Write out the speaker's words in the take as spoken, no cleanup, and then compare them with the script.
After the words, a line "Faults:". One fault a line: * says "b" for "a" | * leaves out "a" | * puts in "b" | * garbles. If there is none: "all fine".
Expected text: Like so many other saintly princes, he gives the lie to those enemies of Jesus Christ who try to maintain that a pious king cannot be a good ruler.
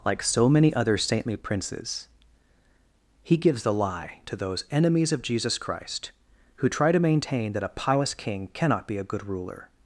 Like so many other saintly princes, he gives the lie to those enemies of Jesus Christ who try to maintain that a pious king cannot be a good ruler.
Faults:
all fine